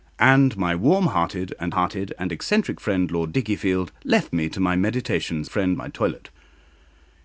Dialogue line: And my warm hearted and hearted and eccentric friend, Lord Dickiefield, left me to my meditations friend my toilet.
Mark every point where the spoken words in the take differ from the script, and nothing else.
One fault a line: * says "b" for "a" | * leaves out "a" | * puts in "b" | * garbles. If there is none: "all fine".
all fine